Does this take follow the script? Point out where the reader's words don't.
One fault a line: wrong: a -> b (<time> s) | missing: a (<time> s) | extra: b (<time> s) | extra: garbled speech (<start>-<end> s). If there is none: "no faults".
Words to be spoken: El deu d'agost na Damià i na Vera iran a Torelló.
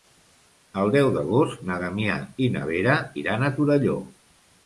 no faults